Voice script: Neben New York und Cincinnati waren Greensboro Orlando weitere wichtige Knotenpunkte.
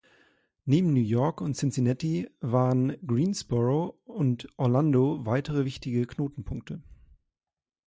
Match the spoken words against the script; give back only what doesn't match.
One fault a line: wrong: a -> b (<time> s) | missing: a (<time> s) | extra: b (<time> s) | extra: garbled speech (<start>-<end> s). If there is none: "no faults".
extra: und (4.1 s)